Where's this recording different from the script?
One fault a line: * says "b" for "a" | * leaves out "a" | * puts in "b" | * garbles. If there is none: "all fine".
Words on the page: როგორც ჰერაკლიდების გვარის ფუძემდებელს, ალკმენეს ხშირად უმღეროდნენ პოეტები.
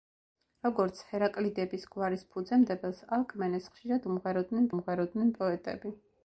* puts in "უმღეროდნენ"